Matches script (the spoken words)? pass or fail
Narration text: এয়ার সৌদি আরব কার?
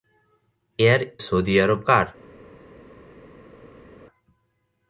pass